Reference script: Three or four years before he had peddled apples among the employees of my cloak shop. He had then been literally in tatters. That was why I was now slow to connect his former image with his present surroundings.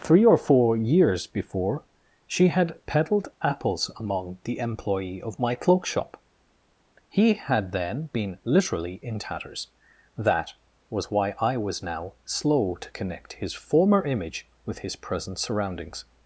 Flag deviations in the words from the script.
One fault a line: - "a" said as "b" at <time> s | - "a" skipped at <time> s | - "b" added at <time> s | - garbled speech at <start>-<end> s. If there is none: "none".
- "he" said as "she" at 2.2 s
- "employees" said as "employee" at 4.6 s